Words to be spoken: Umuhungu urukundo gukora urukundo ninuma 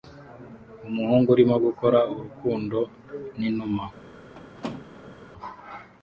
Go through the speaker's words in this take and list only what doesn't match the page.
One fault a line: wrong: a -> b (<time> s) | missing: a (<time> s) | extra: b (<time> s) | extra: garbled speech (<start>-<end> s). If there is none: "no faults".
wrong: urukundo -> urimo (1.3 s)